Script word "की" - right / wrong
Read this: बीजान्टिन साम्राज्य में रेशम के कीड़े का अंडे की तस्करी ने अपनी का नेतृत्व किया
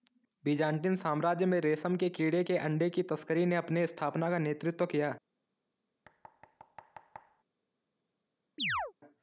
right